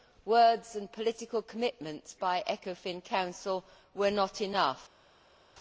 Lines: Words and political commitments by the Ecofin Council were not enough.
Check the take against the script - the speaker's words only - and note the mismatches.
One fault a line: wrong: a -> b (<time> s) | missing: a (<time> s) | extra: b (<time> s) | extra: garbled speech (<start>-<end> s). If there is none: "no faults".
no faults